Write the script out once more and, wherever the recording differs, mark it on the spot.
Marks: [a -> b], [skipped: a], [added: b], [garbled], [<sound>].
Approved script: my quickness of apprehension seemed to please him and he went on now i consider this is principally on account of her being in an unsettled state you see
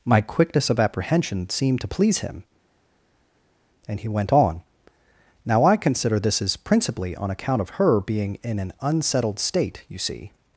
my quickness of apprehension seemed to please him and he went on now i consider this is principally on account of her being in an unsettled state you see